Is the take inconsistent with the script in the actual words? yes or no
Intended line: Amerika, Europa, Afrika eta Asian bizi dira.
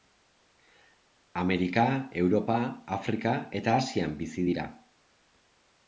no